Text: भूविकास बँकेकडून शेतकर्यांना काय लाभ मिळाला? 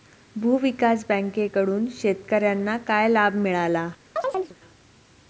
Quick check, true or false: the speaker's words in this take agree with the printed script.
true